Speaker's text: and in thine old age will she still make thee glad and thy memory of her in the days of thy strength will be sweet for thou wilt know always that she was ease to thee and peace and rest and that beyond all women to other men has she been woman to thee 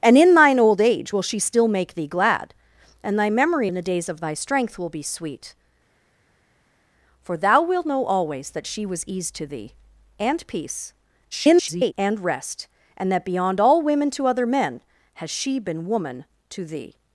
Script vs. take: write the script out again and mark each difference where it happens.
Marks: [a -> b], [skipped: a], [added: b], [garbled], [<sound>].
and in thine old age will she still make thee glad and thy memory [skipped: of her] in the days of thy strength will be sweet for thou wilt know always that she was ease to thee and peace [garbled] and rest and that beyond all women to other men has she been woman to thee